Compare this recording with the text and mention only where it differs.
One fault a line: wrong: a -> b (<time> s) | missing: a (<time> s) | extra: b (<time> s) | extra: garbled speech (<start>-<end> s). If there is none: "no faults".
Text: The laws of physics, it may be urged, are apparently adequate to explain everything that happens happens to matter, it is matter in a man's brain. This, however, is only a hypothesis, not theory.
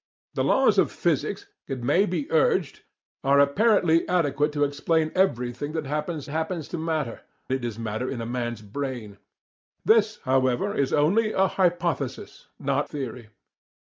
no faults